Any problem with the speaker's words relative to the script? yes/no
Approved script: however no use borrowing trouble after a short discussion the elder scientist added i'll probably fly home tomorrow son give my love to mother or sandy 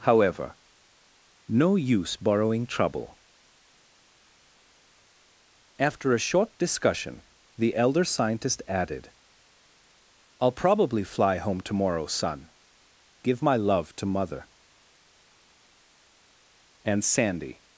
yes